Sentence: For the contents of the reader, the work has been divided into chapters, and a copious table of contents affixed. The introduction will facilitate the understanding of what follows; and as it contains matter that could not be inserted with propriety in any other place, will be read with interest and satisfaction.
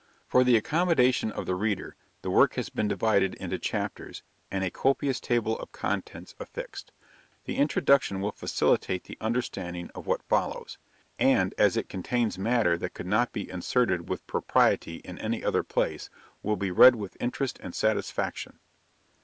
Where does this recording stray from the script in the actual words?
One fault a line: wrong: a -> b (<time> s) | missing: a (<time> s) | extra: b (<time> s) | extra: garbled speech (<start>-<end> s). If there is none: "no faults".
wrong: contents -> accommodation (0.6 s)